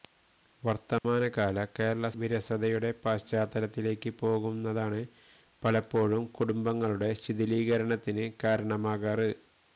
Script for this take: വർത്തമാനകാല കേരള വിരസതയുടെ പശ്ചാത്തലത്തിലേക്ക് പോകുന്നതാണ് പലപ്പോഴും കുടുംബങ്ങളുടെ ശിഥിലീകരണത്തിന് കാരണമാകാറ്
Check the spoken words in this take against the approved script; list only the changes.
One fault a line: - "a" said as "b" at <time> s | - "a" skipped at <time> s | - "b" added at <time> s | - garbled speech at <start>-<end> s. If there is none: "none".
none